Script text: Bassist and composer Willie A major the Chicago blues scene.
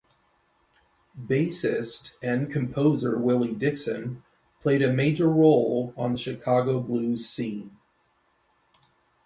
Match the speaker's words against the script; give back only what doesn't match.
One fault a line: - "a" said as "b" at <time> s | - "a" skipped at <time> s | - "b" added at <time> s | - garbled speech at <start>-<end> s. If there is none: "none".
- "Dixon played" added at 3.5 s
- "role on" added at 5.3 s